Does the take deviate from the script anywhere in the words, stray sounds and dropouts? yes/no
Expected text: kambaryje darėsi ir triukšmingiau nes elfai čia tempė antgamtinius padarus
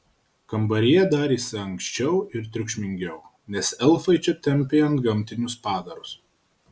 yes